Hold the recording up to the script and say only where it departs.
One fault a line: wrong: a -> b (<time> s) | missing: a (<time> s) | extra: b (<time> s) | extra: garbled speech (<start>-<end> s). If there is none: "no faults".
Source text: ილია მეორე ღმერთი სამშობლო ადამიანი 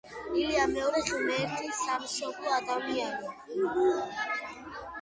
no faults